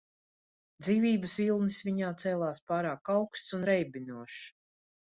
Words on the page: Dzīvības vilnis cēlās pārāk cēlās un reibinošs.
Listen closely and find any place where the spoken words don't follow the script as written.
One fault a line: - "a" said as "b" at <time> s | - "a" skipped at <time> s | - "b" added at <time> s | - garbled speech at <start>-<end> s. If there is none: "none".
- "viņā" added at 1.9 s
- "cēlās" said as "augsts" at 3.2 s